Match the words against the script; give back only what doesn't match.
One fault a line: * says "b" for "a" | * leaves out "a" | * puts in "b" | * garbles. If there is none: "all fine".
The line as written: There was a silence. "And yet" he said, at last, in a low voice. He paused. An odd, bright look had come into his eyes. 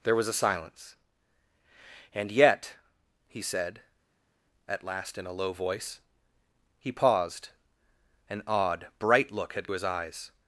* leaves out "come into"